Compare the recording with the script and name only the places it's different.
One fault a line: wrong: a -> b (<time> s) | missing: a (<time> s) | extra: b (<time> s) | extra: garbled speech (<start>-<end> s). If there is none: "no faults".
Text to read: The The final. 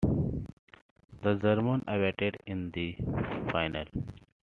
extra: Germans awaited in (1.4 s)